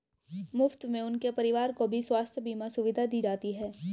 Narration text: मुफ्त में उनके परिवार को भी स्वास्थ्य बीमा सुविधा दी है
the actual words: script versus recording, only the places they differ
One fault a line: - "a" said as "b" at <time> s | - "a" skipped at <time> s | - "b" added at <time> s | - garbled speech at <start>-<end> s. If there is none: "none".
- "जाती" added at 3.2 s